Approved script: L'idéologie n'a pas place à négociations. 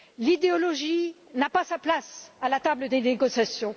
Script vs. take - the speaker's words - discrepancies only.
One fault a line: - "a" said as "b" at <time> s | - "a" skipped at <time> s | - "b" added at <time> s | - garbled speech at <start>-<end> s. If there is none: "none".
- "sa" added at 1.6 s
- "la table des" added at 2.5 s